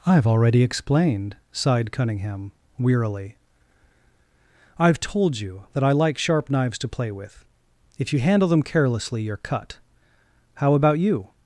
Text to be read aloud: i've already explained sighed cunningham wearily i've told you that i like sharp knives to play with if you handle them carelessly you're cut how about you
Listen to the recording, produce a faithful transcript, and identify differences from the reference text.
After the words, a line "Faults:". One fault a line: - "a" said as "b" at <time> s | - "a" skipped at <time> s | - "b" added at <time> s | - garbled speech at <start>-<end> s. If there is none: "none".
i've already explained sighed cunningham wearily i've told you that i like sharp knives to play with if you handle them carelessly you're cut how about you
Faults:
none